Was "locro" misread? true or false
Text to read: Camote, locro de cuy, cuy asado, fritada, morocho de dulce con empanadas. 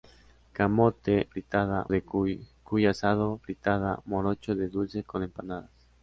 true